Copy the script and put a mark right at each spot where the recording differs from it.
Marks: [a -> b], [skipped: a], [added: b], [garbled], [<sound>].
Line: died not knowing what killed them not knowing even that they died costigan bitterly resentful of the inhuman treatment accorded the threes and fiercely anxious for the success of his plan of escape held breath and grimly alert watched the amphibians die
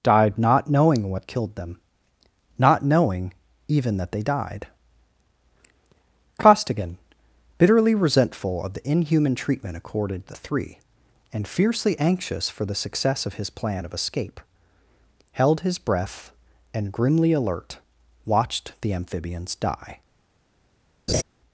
died not knowing what killed them not knowing even that they died costigan bitterly resentful of the inhuman treatment accorded the [threes -> three] and fiercely anxious for the success of his plan of escape held [added: his] breath and grimly alert watched the amphibians die [laugh]